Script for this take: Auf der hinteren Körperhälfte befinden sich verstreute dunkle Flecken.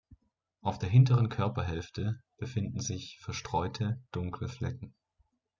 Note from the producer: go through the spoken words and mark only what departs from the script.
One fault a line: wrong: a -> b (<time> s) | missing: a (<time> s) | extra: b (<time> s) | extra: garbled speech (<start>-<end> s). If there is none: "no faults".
no faults